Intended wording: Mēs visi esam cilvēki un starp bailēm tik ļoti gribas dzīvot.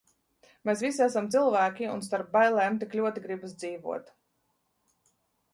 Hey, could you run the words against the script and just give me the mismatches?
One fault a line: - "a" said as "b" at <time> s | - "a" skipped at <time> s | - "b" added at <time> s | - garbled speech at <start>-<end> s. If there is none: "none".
none